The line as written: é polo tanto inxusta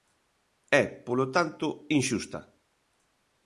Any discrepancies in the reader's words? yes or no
no